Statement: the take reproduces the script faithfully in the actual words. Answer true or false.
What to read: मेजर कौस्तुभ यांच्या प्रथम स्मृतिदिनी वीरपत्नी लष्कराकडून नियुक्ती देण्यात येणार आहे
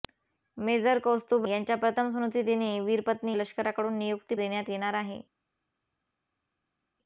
true